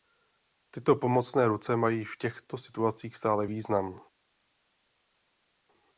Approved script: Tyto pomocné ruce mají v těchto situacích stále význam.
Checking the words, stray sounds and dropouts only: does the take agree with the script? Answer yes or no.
yes